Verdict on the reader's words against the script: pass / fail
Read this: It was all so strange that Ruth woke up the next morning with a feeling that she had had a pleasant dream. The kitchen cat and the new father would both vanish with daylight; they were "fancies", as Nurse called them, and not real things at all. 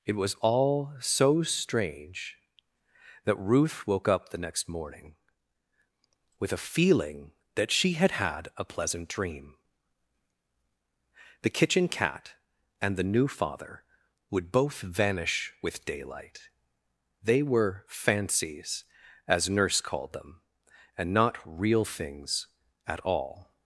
pass